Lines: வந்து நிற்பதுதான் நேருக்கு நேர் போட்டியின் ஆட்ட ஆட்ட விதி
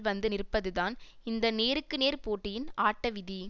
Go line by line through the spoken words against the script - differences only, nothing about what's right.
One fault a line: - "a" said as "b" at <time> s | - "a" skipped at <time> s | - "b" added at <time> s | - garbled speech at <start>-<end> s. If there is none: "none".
- "இந்த" added at 1.2 s
- "ஆட்ட" skipped at 3.1 s